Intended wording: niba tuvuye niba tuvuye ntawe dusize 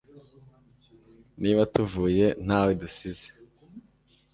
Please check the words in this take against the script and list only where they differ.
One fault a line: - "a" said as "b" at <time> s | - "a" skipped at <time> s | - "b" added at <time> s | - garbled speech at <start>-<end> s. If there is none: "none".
- "niba tuvuye" skipped at 2.2 s